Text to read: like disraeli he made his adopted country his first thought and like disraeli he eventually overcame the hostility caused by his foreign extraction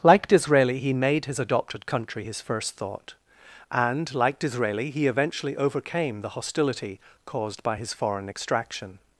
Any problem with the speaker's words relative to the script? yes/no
no